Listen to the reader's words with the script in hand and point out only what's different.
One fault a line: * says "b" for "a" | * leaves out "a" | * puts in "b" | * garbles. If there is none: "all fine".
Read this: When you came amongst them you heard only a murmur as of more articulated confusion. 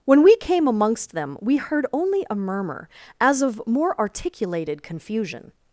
* says "we" for "you"
* says "we" for "you"